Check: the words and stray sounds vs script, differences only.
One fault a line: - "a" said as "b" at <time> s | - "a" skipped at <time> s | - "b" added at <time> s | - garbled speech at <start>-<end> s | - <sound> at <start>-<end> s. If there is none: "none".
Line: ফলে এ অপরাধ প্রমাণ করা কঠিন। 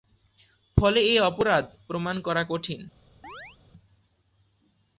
- chirp at 3.2-3.6 s